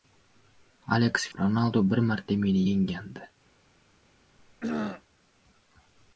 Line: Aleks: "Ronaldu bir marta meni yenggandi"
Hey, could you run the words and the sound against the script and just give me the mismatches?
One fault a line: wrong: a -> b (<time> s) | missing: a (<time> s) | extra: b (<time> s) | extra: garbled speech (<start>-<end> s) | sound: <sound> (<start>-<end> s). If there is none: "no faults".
sound: throat clearing (4.4-5.0 s)